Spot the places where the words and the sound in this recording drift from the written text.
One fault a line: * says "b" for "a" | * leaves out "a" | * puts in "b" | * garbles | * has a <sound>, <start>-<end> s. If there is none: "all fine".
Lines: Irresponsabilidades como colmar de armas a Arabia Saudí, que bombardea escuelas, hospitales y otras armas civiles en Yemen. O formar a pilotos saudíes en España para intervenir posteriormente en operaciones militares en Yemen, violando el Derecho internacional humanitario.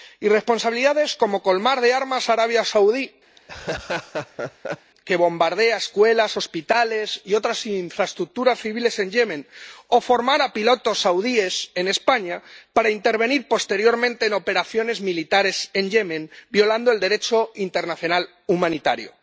* has a laugh, 3.4-4.9 s
* says "infraestructuras" for "armas"